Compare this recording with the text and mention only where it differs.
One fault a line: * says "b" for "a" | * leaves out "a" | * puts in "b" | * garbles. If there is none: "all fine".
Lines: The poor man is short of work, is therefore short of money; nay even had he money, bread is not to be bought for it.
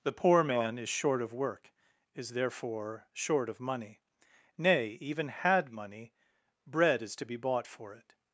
* leaves out "he"
* leaves out "not"